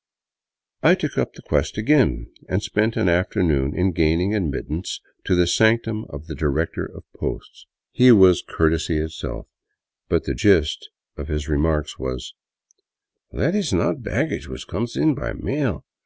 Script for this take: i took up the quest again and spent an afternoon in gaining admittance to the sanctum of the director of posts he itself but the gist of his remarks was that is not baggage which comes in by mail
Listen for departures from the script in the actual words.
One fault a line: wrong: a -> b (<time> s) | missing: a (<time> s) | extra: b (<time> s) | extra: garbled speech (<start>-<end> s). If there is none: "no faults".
extra: was courtesy (8.1 s)